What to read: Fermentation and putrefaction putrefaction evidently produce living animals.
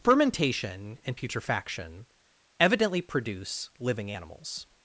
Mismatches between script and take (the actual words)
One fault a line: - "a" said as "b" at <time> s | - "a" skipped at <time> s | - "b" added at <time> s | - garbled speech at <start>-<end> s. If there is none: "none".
- "putrefaction" skipped at 2.1 s